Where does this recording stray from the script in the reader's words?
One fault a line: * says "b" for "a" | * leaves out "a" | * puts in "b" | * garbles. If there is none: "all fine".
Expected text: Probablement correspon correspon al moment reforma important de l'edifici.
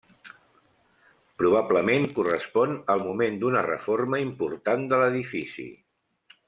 * leaves out "correspon"
* puts in "d'una"